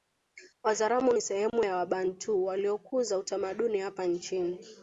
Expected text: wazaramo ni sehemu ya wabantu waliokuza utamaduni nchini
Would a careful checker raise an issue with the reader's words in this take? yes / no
yes